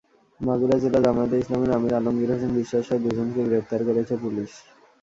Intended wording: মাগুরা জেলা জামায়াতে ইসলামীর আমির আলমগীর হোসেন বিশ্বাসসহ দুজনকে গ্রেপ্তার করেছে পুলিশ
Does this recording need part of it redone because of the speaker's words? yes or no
no